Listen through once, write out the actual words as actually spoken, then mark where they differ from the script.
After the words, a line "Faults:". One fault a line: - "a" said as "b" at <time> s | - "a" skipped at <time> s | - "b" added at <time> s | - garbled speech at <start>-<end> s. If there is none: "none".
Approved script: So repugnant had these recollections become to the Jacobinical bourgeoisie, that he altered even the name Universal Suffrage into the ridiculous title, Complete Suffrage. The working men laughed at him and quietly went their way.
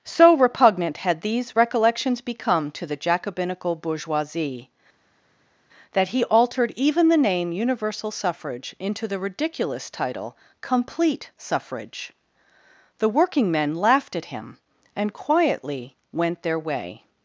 So repugnant had these recollections become to the Jacobinical bourgeoisie, that he altered even the name Universal Suffrage into the ridiculous title, Complete Suffrage. The working men laughed at him and quietly went their way.
Faults:
none